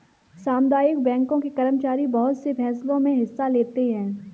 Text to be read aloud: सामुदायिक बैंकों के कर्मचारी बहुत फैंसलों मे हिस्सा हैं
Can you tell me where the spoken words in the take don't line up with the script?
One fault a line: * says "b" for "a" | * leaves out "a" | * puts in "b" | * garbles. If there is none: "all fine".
* puts in "से"
* puts in "लेते"